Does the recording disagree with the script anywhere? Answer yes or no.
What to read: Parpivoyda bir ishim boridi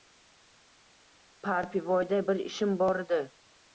no